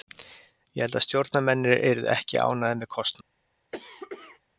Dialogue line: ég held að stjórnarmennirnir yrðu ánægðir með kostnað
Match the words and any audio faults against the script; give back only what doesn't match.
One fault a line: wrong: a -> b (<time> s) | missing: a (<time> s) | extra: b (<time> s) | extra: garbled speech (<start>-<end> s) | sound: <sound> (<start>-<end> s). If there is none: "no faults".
extra: ekki (2.1 s)
sound: cough (3.7-4.4 s)